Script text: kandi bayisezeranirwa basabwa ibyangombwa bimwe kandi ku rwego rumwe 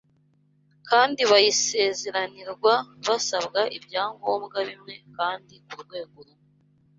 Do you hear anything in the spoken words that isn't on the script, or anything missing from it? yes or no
no